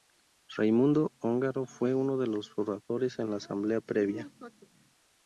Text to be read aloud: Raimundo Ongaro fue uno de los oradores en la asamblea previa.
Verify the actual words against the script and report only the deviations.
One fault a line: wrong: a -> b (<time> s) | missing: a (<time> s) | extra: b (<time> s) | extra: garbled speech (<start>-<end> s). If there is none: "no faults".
no faults